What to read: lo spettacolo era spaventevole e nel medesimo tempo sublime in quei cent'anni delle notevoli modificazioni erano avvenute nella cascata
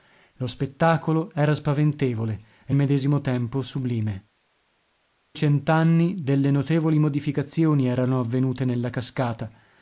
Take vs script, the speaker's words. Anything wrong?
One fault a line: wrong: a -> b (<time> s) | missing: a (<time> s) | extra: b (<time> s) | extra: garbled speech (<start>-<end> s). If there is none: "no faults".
missing: nel (2.7 s)
missing: in quei (4.3 s)